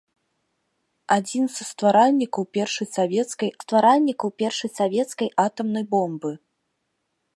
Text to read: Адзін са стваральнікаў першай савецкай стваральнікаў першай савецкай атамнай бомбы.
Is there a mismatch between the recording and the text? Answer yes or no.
no